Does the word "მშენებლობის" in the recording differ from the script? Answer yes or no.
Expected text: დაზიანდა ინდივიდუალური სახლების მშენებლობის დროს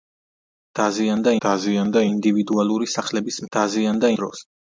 yes